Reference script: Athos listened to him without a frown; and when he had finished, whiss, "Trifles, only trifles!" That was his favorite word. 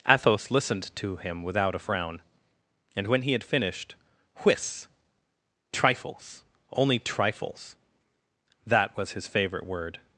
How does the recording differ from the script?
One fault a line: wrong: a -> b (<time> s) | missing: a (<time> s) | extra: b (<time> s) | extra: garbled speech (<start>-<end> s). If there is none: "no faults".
no faults